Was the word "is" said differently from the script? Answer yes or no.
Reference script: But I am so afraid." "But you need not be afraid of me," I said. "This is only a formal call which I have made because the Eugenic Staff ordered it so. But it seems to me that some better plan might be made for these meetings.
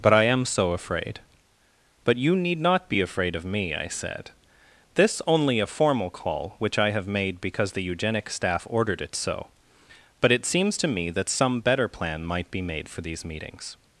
yes